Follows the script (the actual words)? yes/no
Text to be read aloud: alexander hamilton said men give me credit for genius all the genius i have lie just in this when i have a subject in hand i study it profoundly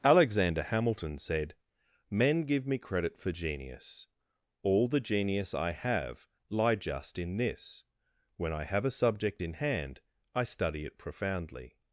yes